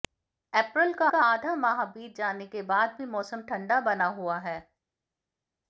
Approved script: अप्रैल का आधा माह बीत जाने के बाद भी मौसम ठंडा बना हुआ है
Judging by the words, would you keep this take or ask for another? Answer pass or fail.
fail